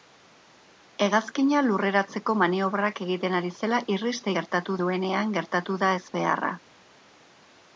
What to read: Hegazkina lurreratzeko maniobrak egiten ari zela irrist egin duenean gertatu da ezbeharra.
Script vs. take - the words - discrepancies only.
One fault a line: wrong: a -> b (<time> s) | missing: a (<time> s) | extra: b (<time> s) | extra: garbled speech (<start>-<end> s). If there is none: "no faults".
wrong: egin -> gertatu (4.4 s)